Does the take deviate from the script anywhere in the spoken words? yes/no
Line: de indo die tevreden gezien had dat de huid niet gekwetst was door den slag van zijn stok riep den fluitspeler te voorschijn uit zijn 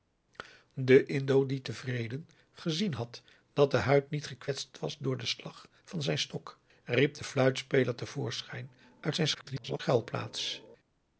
yes